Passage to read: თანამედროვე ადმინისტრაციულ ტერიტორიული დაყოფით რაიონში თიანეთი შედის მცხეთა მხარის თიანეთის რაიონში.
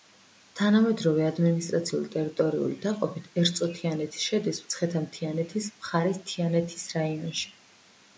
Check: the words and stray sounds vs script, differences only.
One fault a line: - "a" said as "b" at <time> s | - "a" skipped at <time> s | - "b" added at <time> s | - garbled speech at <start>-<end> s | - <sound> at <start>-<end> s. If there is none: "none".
- "რაიონში" said as "ერწო" at 3.4 s
- "მთიანეთის" added at 5.1 s